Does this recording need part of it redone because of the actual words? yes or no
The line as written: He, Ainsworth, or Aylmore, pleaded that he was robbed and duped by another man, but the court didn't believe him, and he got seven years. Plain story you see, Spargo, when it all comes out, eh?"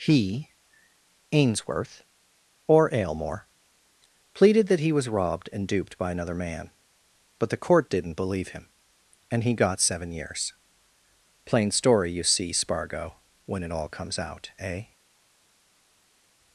no